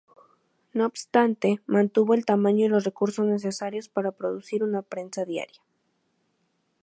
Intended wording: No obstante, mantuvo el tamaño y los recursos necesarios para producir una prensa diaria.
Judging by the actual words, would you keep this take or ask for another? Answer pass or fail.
pass